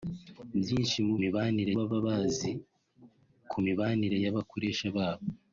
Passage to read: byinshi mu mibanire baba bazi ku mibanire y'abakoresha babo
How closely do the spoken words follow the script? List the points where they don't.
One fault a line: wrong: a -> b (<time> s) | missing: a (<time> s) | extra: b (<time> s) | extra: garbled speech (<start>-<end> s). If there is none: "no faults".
no faults